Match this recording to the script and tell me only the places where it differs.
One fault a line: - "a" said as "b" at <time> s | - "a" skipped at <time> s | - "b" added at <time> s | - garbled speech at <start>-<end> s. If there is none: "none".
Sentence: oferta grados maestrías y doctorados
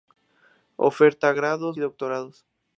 - "maestrías" skipped at 1.8 s